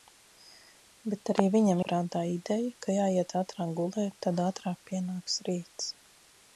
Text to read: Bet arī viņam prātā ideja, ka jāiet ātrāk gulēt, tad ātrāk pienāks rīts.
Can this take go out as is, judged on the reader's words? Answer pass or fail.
pass